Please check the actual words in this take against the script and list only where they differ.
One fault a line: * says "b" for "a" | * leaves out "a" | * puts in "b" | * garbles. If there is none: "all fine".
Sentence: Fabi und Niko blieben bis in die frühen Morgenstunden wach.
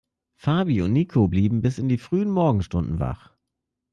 all fine